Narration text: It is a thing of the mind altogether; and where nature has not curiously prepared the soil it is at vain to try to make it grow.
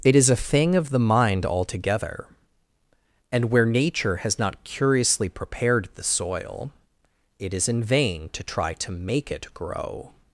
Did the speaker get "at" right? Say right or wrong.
wrong